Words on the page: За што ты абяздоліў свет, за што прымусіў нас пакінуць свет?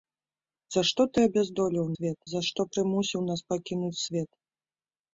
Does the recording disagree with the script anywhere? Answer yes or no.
no